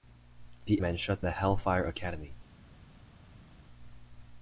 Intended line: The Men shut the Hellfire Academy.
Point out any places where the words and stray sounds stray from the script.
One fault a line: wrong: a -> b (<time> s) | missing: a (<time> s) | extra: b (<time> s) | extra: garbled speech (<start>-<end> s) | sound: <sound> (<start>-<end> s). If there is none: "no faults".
no faults